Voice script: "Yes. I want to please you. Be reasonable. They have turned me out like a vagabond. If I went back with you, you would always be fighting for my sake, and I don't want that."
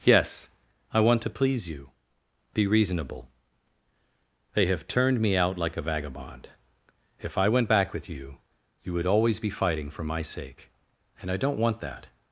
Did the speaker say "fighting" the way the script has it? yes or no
yes